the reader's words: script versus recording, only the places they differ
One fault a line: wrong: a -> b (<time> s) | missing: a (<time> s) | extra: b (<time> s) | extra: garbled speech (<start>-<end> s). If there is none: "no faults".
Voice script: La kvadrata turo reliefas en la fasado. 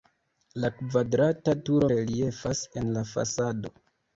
no faults